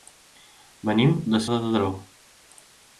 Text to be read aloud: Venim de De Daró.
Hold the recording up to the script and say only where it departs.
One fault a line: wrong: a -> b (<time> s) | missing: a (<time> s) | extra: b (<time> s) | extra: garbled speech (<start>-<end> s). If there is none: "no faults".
no faults